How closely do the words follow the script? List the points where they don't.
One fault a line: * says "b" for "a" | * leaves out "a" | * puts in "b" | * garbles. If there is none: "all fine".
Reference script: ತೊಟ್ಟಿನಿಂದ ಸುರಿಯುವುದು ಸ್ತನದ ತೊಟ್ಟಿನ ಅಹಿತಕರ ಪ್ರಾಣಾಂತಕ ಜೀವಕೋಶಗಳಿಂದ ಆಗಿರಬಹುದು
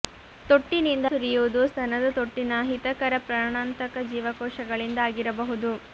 all fine